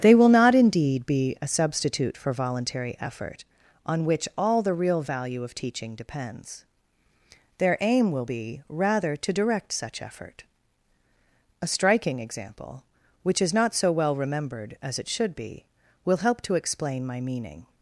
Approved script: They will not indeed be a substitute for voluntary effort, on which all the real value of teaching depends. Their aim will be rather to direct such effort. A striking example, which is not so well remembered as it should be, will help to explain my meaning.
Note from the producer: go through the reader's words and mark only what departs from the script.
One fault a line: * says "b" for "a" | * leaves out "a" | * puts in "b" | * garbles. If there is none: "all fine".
all fine